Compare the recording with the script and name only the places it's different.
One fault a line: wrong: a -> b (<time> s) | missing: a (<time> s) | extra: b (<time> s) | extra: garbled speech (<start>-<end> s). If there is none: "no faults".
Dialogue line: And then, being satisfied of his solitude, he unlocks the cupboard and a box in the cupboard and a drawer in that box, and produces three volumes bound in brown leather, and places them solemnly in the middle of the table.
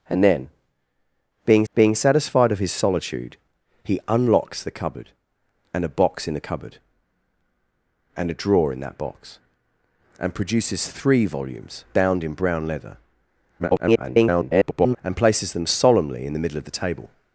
extra: being (1.7 s)
extra: garbled speech (13.6-15.0 s)